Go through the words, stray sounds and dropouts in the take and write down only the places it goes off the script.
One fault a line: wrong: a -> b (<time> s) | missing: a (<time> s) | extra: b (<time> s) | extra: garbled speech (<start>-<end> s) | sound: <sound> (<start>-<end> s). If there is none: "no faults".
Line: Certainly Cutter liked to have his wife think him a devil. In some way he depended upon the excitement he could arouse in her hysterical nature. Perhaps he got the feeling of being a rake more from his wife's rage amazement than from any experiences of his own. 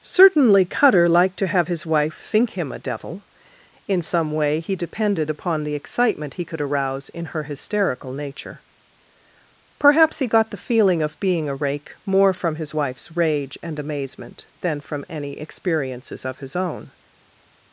extra: and (13.6 s)